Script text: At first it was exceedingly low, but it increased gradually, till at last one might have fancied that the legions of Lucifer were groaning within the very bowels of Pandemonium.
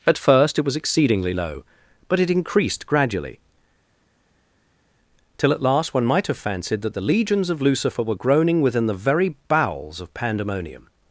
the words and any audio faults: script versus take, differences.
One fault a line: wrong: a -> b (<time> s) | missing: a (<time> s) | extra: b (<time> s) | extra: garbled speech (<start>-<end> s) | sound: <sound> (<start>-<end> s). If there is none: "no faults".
no faults